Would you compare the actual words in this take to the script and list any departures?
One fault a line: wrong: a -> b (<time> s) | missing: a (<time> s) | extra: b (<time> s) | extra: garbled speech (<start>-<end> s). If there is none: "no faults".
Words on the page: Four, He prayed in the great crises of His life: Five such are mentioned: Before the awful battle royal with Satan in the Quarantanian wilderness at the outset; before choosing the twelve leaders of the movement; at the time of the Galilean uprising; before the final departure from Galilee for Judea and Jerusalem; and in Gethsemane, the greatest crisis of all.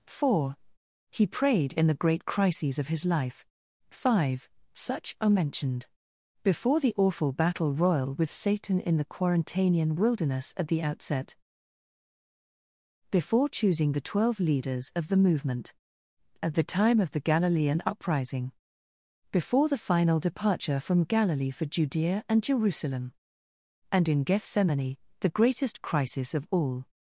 no faults